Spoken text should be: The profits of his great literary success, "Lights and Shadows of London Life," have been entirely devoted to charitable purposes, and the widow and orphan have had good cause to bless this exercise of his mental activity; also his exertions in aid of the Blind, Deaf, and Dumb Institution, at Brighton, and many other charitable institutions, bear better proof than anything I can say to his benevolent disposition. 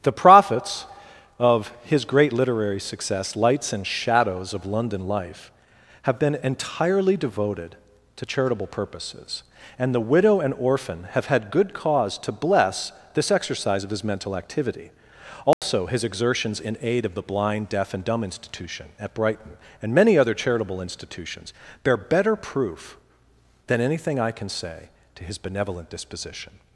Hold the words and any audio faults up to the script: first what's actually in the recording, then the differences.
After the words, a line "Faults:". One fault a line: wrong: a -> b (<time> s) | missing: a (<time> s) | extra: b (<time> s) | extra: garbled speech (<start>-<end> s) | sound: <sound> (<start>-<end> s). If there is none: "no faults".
The profits of his great literary success, "Lights and Shadows of London Life," have been entirely devoted to charitable purposes, and the widow and orphan have had good cause to bless this exercise of his mental activity; also his exertions in aid of the Blind, Deaf, and Dumb Institution, at Brighton, and many other charitable institutions, bear better proof than anything I can say to his benevolent disposition.
Faults:
sound: dropout (15.5-15.6 s)